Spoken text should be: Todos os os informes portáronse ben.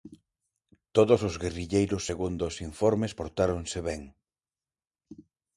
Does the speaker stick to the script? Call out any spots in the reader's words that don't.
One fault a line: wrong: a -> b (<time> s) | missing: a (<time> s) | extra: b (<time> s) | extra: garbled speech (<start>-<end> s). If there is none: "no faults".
extra: guerrilleiros segundo (1.4 s)